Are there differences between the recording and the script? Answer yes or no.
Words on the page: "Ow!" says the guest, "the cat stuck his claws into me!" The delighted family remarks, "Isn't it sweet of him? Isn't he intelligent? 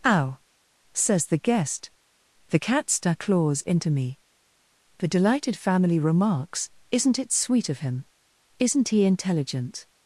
yes